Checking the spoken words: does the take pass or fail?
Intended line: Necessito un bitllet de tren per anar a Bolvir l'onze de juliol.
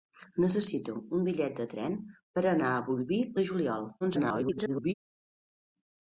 fail